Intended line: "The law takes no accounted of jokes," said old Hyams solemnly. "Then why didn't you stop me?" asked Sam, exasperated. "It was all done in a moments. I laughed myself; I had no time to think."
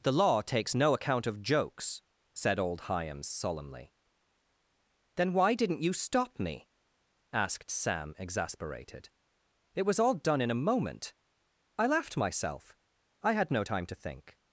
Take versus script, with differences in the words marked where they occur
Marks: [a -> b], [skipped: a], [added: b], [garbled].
"The law takes no [accounted -> account] of jokes," said old Hyams solemnly. "Then why didn't you stop me?" asked Sam, exasperated. "It was all done in a [moments. -> moment] I laughed myself; I had no time to think."